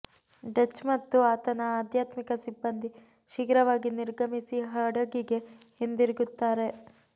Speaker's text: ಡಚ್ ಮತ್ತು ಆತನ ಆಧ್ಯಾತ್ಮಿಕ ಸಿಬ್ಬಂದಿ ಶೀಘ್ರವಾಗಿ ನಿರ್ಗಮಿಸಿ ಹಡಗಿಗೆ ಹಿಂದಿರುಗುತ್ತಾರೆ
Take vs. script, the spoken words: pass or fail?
pass